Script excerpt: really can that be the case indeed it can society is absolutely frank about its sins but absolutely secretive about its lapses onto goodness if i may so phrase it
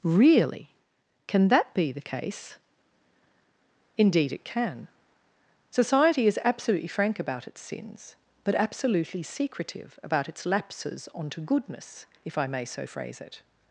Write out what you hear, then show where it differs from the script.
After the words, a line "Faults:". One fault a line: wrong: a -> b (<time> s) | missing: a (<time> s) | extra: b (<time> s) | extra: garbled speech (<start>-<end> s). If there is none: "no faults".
really can that be the case indeed it can society is absolutely frank about its sins but absolutely secretive about its lapses onto goodness if i may so phrase it
Faults:
no faults